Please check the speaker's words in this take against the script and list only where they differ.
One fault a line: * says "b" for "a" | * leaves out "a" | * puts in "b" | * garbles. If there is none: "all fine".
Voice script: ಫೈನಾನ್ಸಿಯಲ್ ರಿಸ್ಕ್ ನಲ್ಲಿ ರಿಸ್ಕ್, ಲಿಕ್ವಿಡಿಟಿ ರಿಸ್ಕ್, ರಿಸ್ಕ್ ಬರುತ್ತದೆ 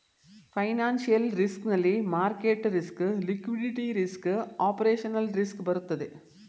* puts in "ಮಾರ್ಕೆಟ್"
* puts in "ಆಪರೇಷನಲ್"